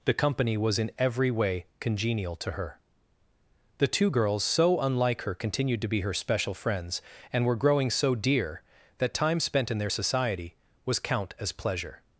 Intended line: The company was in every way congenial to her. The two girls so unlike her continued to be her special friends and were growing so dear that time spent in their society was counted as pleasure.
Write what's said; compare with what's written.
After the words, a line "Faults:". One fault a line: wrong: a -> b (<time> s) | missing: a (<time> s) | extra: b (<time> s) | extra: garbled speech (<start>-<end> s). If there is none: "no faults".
The company was in every way congenial to her. The two girls so unlike her continued to be her special friends and were growing so dear that time spent in their society was count as pleasure.
Faults:
wrong: counted -> count (11.0 s)